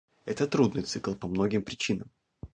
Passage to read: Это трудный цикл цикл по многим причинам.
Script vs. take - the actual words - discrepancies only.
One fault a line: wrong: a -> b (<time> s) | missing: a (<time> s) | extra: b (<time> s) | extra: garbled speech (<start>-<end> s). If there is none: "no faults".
missing: цикл (1.1 s)